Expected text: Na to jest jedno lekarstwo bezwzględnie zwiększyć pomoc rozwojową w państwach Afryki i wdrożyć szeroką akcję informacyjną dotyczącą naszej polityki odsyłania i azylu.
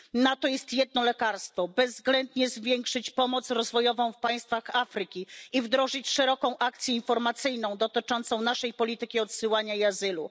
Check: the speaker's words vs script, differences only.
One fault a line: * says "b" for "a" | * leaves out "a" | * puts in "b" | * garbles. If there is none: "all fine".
all fine